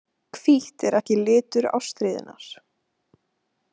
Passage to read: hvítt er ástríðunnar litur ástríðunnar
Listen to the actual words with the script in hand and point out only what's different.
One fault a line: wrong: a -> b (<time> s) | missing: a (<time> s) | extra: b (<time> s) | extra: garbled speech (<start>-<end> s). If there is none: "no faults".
wrong: ástríðunnar -> ekki (1.0 s)